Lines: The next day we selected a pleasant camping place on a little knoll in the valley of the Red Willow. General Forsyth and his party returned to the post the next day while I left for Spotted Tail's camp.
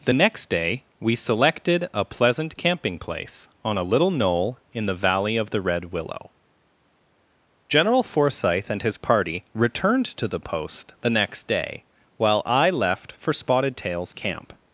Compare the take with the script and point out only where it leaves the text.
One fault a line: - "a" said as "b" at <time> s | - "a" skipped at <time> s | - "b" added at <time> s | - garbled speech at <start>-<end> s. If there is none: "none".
none